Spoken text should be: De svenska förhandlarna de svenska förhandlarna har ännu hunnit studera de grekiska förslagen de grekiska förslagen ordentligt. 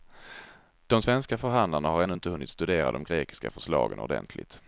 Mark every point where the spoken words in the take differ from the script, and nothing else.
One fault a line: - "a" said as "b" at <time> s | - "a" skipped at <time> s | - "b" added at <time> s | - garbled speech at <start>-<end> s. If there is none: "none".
- "de svenska förhandlarna" skipped at 1.9 s
- "inte" added at 2.1 s
- "de grekiska förslagen" skipped at 4.0 s